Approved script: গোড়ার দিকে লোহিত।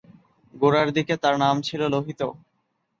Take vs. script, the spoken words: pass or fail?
fail